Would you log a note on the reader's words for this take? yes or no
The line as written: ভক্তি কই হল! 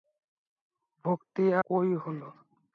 no